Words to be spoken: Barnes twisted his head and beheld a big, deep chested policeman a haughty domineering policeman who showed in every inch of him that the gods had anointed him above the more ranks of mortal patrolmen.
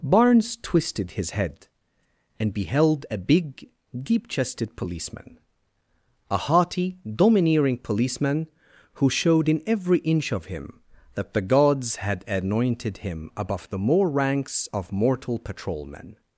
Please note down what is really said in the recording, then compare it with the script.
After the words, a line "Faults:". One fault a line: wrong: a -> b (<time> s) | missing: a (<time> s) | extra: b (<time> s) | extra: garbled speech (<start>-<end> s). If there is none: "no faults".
Barnes twisted his head and beheld a big, deep chested policeman a haughty domineering policeman who showed in every inch of him that the gods had anointed him above the more ranks of mortal patrolmen.
Faults:
no faults